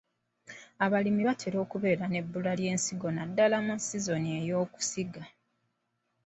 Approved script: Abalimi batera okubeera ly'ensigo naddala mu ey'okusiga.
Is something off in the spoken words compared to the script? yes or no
yes